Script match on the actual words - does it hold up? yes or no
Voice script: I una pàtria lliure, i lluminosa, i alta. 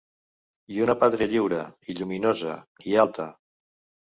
yes